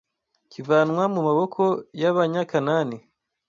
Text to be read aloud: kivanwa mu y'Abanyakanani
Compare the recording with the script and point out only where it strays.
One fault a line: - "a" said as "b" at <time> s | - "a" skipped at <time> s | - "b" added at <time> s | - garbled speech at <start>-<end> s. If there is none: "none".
- "maboko" added at 1.3 s